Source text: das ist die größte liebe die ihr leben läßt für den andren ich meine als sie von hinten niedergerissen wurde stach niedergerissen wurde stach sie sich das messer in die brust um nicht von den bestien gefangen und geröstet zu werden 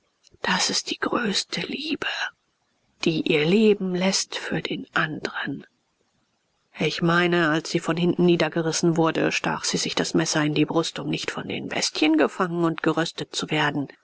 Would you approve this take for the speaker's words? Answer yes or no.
no